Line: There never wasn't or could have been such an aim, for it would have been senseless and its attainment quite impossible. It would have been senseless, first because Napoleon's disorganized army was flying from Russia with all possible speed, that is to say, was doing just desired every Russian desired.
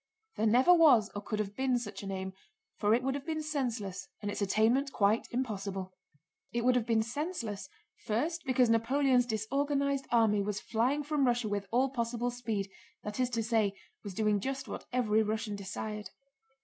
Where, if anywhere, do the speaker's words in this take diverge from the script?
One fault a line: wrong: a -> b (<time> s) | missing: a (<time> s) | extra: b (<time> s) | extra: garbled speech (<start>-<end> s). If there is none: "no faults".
wrong: wasn't -> was (0.7 s)
wrong: desired -> what (14.7 s)